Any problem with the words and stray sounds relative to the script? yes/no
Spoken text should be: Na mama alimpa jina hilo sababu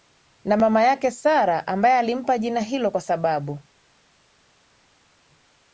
yes